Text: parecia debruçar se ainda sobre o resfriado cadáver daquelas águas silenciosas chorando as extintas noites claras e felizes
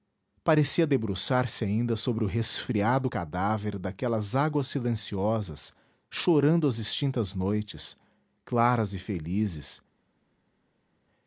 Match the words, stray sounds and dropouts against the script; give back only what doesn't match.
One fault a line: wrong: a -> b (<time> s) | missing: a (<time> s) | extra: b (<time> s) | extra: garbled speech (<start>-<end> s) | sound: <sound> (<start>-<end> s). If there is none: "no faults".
no faults